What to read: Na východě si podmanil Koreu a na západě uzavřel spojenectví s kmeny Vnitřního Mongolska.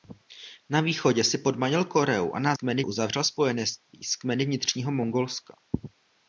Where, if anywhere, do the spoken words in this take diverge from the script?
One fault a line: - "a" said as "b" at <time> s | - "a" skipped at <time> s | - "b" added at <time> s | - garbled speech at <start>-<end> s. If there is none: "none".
- "západě" said as "kmeny" at 2.5 s